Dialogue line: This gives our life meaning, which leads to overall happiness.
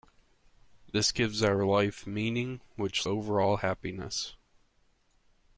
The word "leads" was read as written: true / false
false